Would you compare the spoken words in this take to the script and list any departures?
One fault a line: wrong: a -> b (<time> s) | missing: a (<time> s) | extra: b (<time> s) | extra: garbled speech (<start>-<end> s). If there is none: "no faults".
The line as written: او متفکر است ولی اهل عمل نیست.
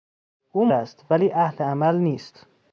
missing: متفکر (0.7 s)